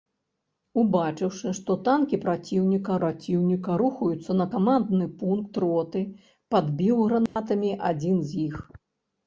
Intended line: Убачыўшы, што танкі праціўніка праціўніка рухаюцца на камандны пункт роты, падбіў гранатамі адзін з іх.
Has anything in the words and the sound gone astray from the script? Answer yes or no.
yes